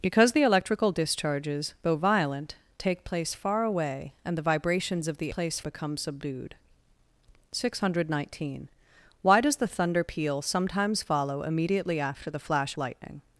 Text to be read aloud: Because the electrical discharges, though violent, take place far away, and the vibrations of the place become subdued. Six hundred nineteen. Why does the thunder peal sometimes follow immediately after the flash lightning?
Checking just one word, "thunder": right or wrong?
right